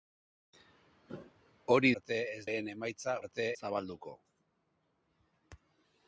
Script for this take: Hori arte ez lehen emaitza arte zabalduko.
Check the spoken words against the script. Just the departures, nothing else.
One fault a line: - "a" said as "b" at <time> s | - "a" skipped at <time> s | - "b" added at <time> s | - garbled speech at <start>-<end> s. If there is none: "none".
none